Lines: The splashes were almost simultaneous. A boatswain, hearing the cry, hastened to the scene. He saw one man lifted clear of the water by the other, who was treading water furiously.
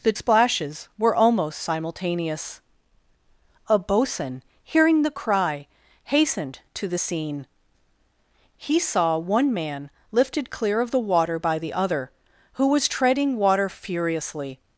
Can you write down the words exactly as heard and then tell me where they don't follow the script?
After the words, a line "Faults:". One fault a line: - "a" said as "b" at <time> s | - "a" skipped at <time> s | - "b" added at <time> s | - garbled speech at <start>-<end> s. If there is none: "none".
The splashes were almost simultaneous. A boatswain, hearing the cry, hastened to the scene. He saw one man lifted clear of the water by the other, who was treading water furiously.
Faults:
none